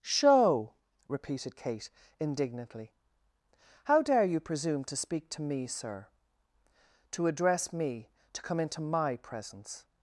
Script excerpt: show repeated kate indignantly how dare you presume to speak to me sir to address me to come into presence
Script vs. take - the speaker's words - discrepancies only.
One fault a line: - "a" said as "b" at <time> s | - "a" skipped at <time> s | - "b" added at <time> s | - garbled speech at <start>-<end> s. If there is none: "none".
- "my" added at 8.8 s